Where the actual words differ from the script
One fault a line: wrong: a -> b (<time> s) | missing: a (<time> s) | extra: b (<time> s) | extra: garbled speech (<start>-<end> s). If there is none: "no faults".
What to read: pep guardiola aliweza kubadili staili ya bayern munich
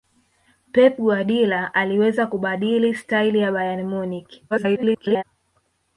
extra: garbled speech (4.5-5.2 s)